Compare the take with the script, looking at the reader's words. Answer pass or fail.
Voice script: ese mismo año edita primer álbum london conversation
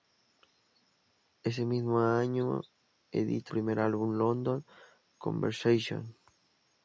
pass